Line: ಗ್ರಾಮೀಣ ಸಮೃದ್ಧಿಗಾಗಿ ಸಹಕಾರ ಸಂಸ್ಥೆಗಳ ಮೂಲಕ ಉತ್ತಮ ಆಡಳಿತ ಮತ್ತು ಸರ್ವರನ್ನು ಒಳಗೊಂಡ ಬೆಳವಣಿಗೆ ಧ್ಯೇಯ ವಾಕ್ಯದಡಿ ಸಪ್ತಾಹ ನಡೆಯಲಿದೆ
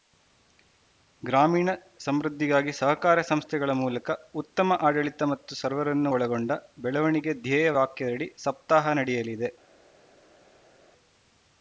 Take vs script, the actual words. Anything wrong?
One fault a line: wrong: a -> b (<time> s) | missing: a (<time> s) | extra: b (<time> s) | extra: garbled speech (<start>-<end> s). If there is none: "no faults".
no faults